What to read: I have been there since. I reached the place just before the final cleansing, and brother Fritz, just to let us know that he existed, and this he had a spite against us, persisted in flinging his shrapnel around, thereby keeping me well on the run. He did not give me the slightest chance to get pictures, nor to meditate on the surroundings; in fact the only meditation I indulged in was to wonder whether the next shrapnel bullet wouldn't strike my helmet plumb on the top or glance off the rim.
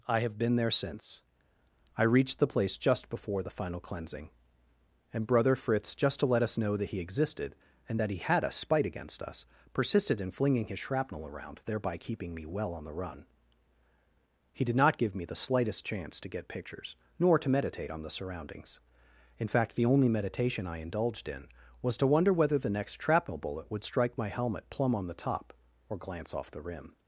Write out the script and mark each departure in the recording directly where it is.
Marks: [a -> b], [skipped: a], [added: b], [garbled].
I have been there since. I reached the place just before the final cleansing, and brother Fritz, just to let us know that he existed, and [this -> that] he had a spite against us, persisted in flinging his shrapnel around, thereby keeping me well on the run. He did not give me the slightest chance to get pictures, nor to meditate on the surroundings; in fact the only meditation I indulged in was to wonder whether the next shrapnel bullet [wouldn't -> would] strike my helmet plumb on the top or glance off the rim.